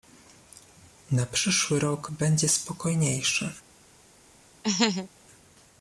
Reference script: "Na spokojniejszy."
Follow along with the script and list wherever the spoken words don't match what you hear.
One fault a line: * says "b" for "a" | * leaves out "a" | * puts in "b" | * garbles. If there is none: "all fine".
* puts in "przyszły rok będzie"